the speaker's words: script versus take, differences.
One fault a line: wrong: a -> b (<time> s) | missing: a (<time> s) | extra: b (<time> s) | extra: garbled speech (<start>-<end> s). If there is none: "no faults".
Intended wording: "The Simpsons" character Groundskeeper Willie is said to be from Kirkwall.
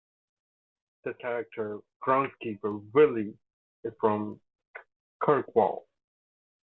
missing: Simpsons (1.1 s)
missing: said to be (3.9 s)